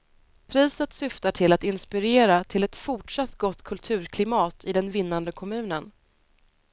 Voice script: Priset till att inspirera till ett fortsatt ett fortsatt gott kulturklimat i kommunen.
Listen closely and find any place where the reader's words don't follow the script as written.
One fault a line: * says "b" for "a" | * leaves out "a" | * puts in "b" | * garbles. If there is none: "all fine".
* puts in "syftar"
* leaves out "ett fortsatt"
* puts in "den vinnande"